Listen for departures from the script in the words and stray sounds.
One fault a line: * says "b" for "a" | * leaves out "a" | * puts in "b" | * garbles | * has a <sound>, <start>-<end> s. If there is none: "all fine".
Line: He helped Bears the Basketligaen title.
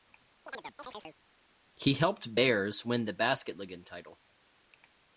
* has a chirp, 0.5-1.2 s
* puts in "win"